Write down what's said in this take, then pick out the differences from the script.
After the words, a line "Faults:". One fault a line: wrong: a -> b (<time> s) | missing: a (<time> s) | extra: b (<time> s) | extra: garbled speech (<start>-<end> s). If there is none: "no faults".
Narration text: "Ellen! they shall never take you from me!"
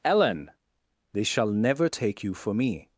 "Ellen! they shall never take you for me!"
Faults:
wrong: from -> for (2.3 s)